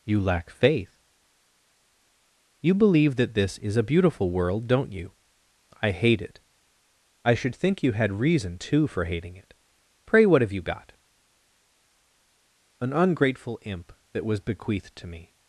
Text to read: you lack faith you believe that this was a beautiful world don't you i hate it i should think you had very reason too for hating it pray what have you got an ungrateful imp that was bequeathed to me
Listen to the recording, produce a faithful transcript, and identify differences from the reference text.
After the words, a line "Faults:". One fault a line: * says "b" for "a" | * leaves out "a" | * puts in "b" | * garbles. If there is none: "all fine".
you lack faith you believe that this is a beautiful world don't you i hate it i should think you had reason too for hating it pray what have you got an ungrateful imp that was bequeathed to me
Faults:
* says "is" for "was"
* leaves out "very"